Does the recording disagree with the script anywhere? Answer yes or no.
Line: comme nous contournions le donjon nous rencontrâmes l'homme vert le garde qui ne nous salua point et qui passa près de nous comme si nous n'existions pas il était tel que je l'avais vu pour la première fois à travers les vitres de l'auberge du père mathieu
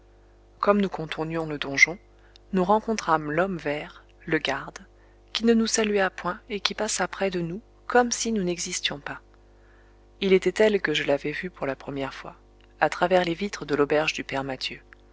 no